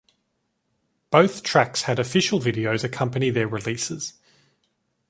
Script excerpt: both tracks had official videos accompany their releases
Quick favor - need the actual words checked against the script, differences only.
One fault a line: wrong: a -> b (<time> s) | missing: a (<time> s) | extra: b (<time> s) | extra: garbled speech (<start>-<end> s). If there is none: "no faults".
no faults